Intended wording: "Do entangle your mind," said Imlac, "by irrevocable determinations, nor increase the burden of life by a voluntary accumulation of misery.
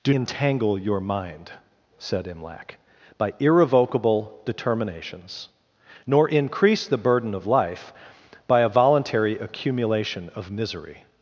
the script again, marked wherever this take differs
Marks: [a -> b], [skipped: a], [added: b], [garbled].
"Do entangle your mind," said Imlac, "by irrevocable determinations, nor increase the burden of life by a voluntary accumulation of misery.